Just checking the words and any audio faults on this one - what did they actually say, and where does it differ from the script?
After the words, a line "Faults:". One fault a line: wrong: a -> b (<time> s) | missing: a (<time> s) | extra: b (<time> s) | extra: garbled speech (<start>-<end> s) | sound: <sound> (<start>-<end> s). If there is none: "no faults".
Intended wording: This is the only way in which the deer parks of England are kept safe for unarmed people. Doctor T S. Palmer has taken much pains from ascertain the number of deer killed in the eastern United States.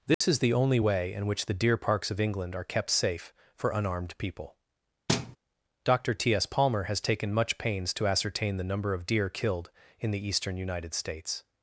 This is the only way in which the deer parks of England are kept safe for unarmed people. Doctor T S. Palmer has taken much pains to ascertain the number of deer killed in the eastern United States.
Faults:
sound: dropout (0.1-0.2 s)
sound: thud (5.1-5.4 s)
wrong: from -> to (7.9 s)